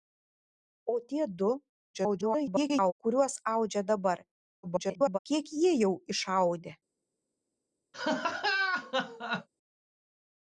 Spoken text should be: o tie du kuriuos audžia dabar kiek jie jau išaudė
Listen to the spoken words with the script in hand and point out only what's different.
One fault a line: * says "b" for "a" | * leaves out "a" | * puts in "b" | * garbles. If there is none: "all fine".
* garbles
* garbles